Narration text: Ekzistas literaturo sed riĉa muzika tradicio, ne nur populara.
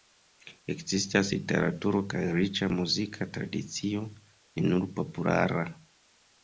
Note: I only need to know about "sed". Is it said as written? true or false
false